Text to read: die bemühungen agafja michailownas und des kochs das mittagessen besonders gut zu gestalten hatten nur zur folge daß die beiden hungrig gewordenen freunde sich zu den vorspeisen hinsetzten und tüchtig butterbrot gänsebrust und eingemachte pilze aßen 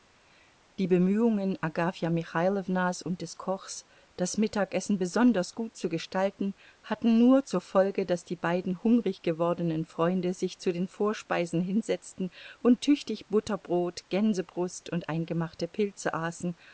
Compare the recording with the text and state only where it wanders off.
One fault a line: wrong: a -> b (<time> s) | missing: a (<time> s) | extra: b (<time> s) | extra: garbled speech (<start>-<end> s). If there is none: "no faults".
no faults